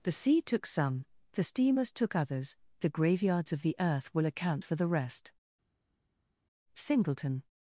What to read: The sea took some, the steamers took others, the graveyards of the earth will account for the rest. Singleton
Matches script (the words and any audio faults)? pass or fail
pass